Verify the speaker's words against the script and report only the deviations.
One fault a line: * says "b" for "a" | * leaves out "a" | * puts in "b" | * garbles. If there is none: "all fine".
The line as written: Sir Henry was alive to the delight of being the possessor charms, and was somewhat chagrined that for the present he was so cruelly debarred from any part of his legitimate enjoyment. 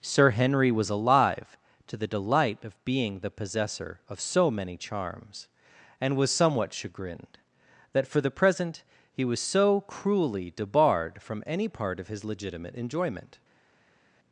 * puts in "of so many"